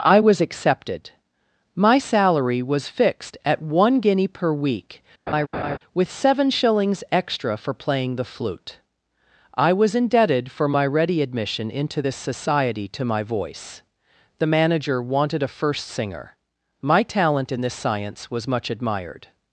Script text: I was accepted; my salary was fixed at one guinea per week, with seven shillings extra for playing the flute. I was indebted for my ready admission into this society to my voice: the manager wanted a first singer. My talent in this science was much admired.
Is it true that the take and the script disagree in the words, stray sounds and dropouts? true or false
true